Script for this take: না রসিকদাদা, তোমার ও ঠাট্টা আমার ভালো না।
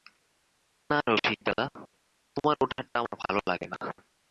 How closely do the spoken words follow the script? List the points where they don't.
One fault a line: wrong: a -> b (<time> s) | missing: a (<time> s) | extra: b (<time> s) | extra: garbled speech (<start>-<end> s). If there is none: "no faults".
extra: লাগে (3.5 s)